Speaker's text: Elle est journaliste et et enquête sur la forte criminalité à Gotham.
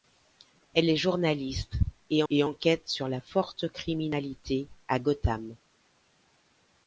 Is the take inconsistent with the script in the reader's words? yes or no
no